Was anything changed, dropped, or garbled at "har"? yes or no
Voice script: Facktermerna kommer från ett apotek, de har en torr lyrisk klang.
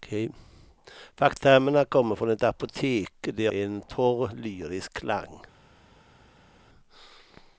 yes